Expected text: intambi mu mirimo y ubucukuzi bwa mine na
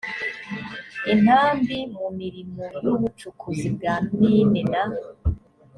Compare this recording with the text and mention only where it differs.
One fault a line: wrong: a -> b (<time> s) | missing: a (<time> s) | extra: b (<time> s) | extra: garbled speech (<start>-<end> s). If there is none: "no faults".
no faults